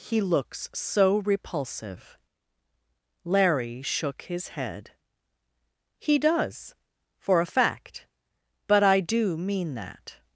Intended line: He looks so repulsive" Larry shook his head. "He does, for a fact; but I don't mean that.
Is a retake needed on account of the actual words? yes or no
yes